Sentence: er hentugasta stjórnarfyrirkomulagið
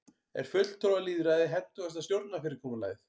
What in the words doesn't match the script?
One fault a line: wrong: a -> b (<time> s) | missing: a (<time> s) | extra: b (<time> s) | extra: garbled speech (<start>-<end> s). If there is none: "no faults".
extra: fulltrúalýðræði (0.5 s)